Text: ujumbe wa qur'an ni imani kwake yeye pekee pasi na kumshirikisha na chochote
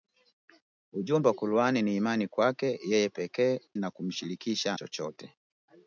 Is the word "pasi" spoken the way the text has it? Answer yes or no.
no